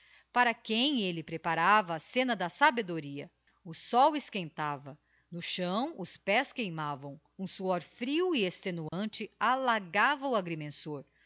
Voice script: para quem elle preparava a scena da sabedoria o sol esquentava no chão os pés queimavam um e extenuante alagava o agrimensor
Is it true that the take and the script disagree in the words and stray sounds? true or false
true